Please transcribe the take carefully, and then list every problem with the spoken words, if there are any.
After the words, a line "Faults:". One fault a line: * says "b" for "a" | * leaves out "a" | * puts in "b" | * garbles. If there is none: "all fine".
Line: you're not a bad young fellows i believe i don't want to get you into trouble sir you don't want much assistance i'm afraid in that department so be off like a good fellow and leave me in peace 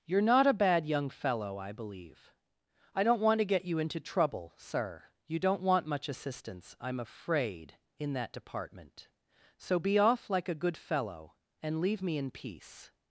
you're not a bad young fellow i believe i don't want to get you into trouble sir you don't want much assistance i'm afraid in that department so be off like a good fellow and leave me in peace
Faults:
* says "fellow" for "fellows"